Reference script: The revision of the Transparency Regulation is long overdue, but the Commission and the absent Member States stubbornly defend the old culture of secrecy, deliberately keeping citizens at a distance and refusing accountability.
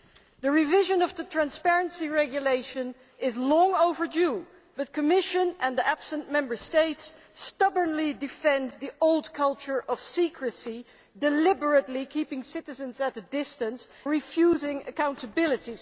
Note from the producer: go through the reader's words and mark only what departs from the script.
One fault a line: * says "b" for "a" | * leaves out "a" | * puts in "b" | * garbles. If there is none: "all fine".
* leaves out "and"